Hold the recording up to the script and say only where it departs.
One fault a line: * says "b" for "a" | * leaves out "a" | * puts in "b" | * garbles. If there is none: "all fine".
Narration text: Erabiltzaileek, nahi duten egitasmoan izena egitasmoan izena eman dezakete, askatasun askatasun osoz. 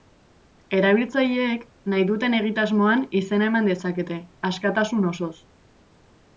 * leaves out "egitasmoan izena"
* leaves out "askatasun"